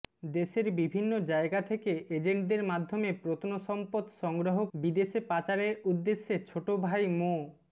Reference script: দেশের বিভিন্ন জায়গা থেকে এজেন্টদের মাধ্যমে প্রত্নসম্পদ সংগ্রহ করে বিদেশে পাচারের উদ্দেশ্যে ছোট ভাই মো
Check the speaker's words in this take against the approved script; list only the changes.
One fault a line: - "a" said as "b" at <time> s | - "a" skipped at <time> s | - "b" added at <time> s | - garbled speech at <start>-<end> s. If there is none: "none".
- "করে" skipped at 4.6 s